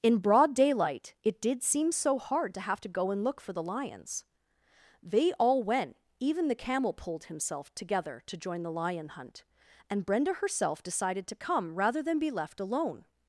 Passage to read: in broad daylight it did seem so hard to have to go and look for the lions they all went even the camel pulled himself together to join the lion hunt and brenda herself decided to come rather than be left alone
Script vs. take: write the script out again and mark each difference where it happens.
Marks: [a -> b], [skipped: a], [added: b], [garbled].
in broad daylight it did seem so hard to have to go and look for the lions they all went even the camel pulled himself together to join the lion hunt and brenda herself decided to come rather than be left alone